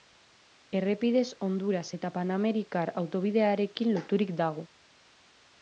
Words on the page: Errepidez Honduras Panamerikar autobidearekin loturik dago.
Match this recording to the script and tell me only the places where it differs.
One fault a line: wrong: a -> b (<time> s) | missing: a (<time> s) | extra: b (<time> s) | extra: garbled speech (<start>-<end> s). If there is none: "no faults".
extra: eta (2.0 s)